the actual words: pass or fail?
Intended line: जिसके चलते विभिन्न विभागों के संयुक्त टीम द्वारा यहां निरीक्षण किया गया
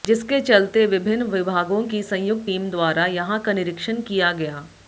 fail